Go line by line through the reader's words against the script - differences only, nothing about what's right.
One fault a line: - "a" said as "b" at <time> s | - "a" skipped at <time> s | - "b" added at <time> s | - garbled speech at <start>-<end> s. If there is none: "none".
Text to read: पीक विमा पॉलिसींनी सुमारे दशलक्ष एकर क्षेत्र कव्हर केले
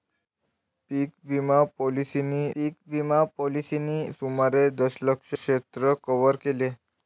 - "पीक विमा पॉलिसींनी" added at 2.6 s
- "एकर" skipped at 5.3 s